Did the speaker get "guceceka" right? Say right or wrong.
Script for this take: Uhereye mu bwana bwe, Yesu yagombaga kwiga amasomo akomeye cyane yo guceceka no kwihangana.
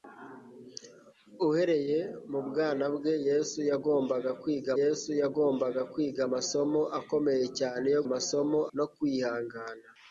wrong